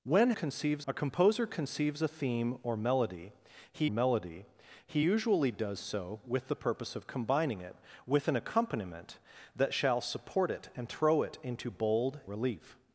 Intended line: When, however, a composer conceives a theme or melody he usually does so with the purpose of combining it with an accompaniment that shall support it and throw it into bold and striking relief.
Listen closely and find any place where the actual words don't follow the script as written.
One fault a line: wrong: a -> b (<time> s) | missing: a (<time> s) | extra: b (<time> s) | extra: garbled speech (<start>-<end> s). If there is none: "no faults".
wrong: however -> conceives (0.3 s)
extra: melody he (3.9 s)
missing: and striking (12.2 s)